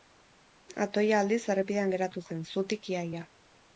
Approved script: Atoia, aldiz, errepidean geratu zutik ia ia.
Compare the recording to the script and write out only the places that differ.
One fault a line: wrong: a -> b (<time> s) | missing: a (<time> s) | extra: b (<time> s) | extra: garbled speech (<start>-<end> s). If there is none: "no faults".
extra: zen (2.3 s)